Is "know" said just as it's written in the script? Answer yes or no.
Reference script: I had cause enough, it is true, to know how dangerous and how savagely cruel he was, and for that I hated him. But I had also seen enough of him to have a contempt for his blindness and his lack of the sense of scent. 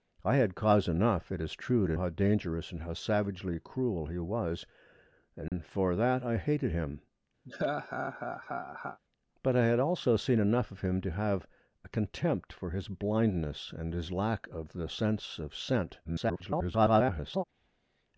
no